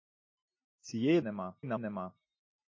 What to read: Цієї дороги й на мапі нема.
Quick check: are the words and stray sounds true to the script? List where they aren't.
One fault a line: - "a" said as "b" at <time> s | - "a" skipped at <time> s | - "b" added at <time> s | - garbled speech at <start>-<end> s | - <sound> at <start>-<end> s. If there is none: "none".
- "дороги" said as "нема" at 1.2 s
- "мапі" skipped at 1.8 s